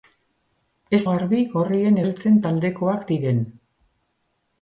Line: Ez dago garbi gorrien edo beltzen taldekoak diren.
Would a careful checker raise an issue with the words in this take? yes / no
yes